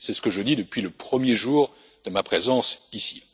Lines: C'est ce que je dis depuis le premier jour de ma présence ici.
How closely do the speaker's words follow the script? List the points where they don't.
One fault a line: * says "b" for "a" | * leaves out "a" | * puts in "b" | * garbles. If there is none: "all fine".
all fine